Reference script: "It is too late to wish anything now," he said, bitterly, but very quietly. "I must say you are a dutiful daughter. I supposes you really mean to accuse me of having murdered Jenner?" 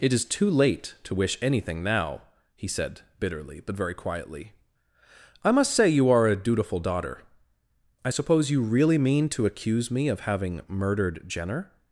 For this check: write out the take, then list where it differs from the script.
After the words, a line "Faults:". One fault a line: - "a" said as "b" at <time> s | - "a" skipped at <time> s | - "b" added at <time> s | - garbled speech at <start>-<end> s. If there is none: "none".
"It is too late to wish anything now," he said, bitterly, but very quietly. "I must say you are a dutiful daughter. I suppose you really mean to accuse me of having murdered Jenner?"
Faults:
- "supposes" said as "suppose" at 8.1 s